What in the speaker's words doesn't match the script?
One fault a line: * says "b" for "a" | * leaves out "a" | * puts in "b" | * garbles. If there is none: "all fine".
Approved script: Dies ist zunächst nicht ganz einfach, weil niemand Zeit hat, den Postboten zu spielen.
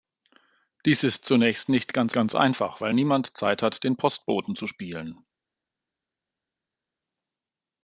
* puts in "ganz"